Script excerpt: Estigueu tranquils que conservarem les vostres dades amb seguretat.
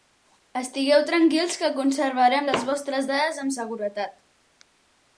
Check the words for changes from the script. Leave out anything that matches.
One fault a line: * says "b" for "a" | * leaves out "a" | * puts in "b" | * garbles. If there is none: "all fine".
all fine